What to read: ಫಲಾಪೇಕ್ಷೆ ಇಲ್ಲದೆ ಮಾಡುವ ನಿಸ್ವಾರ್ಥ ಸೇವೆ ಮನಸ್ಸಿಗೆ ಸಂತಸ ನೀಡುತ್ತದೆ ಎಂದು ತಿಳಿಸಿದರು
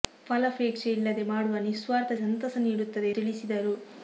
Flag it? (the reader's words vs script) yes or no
yes